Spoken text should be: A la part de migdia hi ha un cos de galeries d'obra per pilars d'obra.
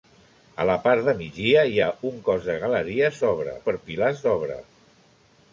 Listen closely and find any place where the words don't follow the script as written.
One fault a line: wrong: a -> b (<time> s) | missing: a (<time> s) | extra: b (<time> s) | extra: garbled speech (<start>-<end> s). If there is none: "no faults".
no faults